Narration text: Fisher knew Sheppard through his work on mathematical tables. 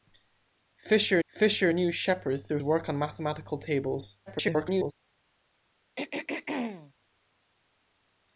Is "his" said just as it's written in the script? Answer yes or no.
no